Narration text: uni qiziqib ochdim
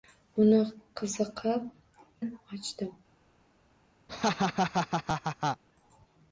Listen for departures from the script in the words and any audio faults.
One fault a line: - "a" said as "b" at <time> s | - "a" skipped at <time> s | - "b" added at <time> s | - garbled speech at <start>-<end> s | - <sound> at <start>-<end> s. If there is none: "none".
- laugh at 4.1-5.6 s